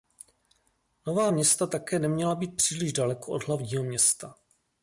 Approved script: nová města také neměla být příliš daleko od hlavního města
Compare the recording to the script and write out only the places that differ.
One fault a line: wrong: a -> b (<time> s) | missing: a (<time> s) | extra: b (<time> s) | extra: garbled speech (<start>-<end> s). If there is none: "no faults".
no faults